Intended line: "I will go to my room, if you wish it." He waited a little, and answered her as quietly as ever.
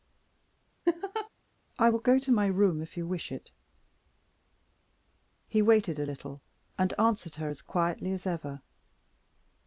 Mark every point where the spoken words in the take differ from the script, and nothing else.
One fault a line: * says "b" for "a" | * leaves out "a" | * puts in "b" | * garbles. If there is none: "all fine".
all fine